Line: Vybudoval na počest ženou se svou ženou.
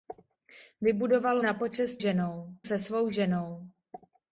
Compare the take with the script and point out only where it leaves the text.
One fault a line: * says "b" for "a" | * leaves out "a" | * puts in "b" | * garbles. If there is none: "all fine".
all fine